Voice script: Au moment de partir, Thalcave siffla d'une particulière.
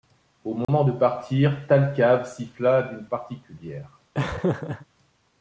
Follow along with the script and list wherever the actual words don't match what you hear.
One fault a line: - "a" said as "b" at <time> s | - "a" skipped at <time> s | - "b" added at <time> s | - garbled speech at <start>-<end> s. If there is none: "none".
none